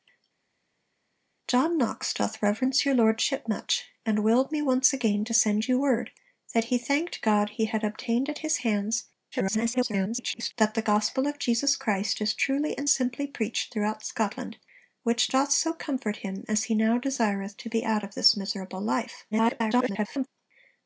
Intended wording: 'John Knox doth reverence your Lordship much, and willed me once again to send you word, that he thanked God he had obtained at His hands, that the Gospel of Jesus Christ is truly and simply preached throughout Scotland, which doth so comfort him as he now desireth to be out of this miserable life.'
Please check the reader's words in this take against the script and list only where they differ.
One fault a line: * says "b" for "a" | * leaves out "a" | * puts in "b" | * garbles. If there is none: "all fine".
* garbles
* garbles